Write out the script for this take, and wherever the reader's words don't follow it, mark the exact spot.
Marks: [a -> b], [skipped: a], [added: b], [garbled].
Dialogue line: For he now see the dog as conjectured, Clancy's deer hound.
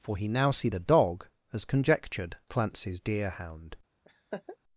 For he now see the dog as conjectured, Clancy's deer hound.